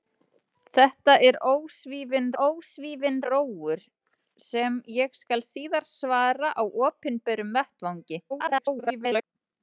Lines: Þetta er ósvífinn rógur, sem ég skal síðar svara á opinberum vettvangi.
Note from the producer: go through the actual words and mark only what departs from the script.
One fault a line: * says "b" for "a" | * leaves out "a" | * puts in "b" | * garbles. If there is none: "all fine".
* puts in "ósvífinn"
* garbles